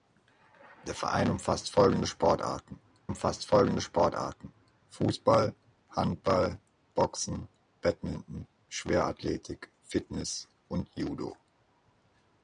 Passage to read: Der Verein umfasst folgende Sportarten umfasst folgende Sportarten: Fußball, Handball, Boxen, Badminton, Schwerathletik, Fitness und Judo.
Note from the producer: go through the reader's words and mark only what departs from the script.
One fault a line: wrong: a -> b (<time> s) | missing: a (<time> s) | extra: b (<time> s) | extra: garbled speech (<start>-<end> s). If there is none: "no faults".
no faults